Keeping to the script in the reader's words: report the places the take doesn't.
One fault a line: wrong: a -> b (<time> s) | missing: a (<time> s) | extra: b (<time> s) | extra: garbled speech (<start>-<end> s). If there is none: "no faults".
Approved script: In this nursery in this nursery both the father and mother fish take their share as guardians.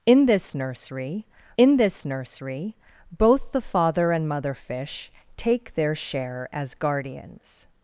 no faults